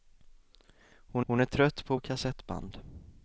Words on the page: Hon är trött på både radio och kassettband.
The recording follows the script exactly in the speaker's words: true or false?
false